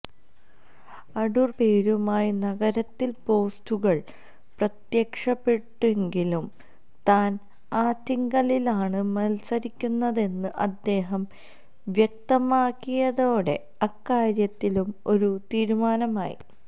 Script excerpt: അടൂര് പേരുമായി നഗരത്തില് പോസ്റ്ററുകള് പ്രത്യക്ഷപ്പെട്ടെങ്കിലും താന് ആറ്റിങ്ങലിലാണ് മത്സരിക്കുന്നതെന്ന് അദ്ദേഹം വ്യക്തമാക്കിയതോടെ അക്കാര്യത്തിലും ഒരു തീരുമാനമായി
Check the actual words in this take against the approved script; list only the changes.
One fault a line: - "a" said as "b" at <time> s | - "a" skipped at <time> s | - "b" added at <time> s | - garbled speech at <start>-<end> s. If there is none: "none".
none